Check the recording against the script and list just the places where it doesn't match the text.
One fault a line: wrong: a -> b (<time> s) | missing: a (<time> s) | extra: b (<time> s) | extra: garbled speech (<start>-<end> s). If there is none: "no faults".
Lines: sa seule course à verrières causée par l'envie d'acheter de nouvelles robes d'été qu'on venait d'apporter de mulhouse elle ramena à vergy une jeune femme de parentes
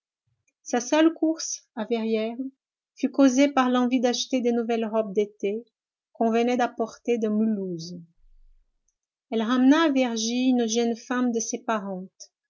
extra: fut (3.0 s)
extra: ses (11.4 s)